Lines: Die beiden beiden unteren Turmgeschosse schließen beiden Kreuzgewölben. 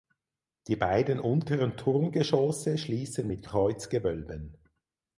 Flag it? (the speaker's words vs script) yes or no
yes